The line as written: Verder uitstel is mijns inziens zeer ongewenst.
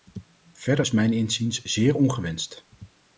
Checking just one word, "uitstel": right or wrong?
wrong